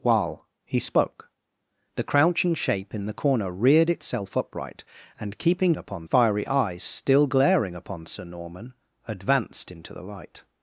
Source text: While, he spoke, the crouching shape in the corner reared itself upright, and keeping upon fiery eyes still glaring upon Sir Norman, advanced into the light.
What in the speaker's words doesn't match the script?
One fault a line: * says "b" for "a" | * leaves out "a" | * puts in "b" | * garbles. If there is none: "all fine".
all fine